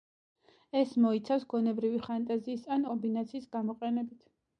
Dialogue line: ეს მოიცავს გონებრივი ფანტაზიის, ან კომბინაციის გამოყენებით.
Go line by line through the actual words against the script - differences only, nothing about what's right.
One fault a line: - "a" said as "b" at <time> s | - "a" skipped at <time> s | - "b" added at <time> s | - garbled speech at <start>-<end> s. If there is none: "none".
none